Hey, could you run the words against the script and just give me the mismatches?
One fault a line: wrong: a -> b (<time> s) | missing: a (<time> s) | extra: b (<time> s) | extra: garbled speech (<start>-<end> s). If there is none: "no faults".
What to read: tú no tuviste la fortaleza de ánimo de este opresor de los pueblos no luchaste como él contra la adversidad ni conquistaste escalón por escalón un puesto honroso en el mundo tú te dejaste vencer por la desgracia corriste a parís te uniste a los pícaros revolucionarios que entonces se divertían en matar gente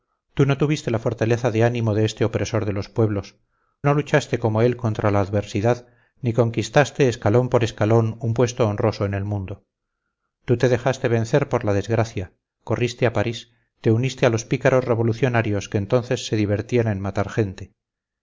no faults